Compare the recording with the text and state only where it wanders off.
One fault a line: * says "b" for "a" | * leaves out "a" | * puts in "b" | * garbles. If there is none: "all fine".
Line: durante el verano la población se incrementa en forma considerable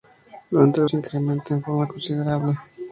* leaves out "verano la población"